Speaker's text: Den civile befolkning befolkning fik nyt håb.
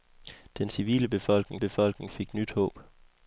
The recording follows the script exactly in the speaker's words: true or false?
true